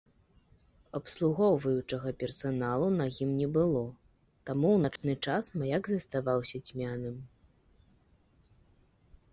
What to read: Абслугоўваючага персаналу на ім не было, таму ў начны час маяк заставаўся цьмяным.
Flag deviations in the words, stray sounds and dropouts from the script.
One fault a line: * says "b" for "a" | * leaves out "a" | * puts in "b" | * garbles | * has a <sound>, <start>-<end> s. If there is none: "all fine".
* has a dropout, 5.0-5.0 s